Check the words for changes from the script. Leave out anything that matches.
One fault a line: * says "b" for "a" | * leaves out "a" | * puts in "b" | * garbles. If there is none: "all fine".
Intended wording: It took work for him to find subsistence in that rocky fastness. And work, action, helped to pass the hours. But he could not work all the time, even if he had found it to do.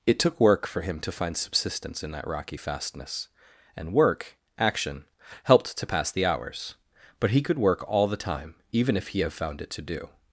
* leaves out "not"
* says "have" for "had"